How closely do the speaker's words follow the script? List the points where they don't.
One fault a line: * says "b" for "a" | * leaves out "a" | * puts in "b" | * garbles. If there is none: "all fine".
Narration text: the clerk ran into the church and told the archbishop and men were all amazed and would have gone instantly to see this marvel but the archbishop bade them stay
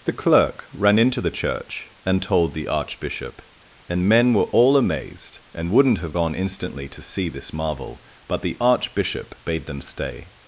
* says "wouldn't" for "would"